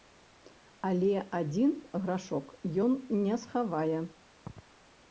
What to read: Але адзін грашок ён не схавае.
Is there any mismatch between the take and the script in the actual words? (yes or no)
no